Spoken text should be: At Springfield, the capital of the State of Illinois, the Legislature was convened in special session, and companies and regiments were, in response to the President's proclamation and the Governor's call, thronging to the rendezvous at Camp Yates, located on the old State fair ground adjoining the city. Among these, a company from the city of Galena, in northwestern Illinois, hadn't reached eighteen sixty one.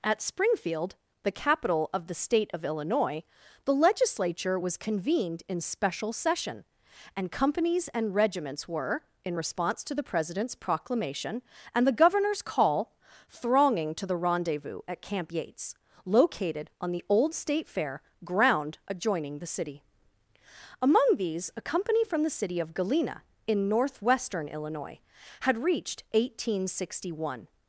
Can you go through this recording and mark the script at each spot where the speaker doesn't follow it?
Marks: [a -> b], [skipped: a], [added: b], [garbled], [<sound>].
At Springfield, the capital of the State of Illinois, the Legislature was convened in special session, and companies and regiments were, in response to the President's proclamation and the Governor's call, thronging to the rendezvous at Camp Yates, located on the old State fair ground adjoining the city. Among these, a company from the city of Galena, in northwestern Illinois, [hadn't -> had] reached eighteen sixty one.